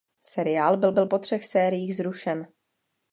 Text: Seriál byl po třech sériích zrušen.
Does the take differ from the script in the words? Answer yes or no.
yes